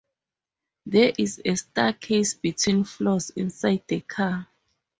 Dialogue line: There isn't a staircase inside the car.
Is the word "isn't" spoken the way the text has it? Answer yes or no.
no